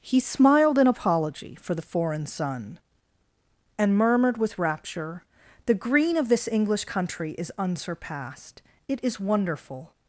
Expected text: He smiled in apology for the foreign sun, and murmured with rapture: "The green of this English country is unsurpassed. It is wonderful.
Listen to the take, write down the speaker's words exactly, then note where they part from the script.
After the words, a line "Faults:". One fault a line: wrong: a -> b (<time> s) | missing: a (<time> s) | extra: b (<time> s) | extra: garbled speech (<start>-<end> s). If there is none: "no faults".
He smiled in apology for the foreign sun, and murmured with rapture: "The green of this English country is unsurpassed. It is wonderful.
Faults:
no faults